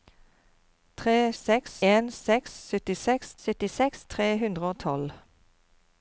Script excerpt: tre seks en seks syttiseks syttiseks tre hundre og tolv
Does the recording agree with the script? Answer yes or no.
yes